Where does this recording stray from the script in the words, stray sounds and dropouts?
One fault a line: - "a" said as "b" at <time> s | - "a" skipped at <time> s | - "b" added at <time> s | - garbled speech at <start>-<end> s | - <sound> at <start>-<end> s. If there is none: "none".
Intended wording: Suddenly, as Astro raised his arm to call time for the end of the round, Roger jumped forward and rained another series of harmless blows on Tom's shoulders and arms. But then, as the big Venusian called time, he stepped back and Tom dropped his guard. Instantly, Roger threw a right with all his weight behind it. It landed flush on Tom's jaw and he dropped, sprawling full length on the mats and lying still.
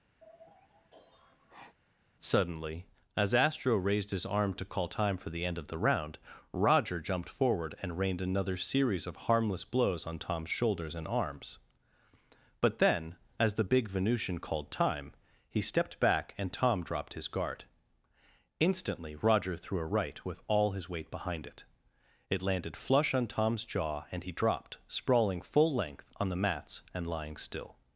- sigh at 0.2-1.8 s